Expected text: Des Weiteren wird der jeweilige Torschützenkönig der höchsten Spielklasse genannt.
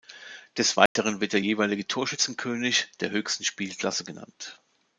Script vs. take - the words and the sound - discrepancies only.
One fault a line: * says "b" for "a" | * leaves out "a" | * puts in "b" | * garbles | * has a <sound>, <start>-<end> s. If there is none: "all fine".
* has a dropout, 0.9-1.0 s